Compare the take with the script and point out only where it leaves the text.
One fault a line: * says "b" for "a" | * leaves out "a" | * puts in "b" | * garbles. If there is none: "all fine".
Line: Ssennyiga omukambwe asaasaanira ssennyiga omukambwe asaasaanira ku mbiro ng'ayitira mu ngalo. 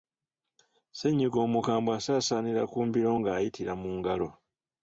* leaves out "ssennyiga omukambwe asaasaanira"